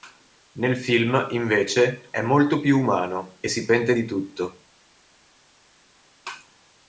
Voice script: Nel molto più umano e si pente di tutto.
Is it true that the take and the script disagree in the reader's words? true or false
true